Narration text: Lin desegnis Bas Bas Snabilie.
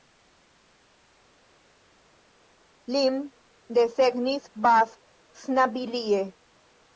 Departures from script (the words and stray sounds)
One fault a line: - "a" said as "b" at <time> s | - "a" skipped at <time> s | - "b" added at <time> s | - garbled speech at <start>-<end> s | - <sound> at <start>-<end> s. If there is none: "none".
- "Bas" skipped at 4.9 s